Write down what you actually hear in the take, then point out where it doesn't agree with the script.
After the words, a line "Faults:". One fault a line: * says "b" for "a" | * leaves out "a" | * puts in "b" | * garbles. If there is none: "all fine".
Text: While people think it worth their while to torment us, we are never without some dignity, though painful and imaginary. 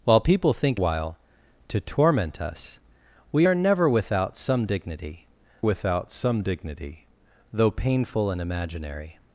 While people think while to torment us, we are never without some dignity without some dignity, though painful and imaginary.
Faults:
* leaves out "it worth their"
* puts in "without some dignity"